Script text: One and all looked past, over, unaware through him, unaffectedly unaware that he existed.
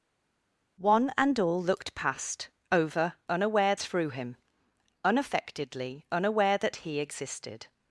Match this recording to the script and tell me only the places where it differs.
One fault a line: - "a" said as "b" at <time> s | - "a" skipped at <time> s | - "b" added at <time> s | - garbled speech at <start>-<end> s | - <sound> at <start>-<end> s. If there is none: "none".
none